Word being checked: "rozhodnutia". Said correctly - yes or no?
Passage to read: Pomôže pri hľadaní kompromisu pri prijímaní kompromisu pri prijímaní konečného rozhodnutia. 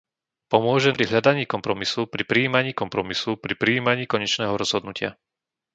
yes